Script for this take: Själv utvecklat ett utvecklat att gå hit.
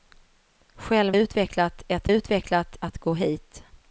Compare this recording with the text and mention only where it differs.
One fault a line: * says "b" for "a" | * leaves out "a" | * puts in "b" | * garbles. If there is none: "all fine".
all fine